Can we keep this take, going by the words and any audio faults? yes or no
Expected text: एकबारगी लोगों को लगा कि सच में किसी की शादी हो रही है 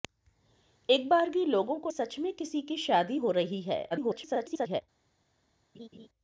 no